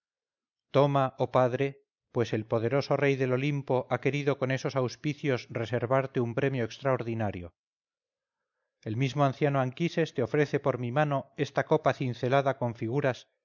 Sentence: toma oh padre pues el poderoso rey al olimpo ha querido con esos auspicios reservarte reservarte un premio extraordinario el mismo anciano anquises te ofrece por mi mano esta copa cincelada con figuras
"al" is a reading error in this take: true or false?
true